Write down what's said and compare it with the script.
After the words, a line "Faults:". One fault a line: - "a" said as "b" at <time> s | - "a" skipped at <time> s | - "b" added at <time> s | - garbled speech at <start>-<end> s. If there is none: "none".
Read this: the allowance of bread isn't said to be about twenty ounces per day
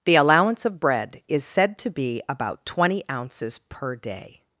the allowance of bread is said to be about twenty ounces per day
Faults:
- "isn't" said as "is" at 1.3 s